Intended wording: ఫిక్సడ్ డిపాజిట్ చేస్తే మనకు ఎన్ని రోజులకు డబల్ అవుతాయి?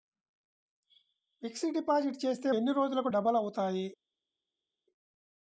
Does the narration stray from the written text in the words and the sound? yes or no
yes